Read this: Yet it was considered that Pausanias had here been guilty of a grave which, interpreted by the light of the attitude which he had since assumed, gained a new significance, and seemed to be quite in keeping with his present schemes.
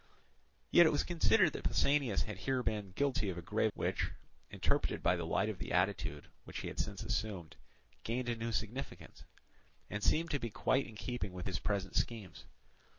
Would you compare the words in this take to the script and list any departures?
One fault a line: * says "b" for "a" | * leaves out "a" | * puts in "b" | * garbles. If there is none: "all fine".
all fine